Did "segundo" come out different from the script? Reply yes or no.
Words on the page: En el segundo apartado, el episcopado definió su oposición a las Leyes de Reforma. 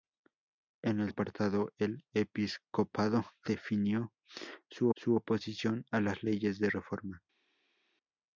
yes